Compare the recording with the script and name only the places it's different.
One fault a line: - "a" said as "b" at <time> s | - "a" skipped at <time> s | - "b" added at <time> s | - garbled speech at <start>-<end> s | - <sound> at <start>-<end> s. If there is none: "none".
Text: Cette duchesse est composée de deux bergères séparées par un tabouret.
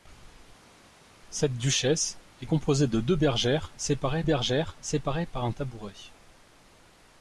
- "bergères séparées" added at 4.2 s